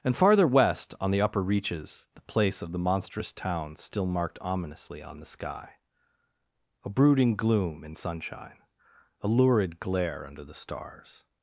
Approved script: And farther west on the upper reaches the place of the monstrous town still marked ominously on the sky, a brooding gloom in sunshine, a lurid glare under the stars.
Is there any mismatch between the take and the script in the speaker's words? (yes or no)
no